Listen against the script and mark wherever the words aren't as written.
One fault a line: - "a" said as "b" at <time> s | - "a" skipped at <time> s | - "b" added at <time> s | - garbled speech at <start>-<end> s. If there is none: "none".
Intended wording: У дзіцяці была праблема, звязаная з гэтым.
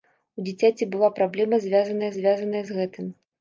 - "звязаная" added at 2.2 s